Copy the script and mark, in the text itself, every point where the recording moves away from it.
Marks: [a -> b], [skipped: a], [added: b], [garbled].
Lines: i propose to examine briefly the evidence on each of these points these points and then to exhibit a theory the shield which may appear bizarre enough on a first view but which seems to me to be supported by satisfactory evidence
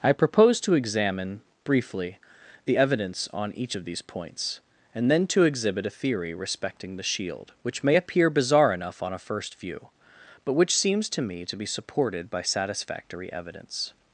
i propose to examine briefly the evidence on each of these points [skipped: these points] and then to exhibit a theory [added: respecting] the shield which may appear bizarre enough on a first view but which seems to me to be supported by satisfactory evidence